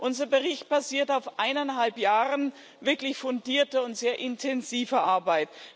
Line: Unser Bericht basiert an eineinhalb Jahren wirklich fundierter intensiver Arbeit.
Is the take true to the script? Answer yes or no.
no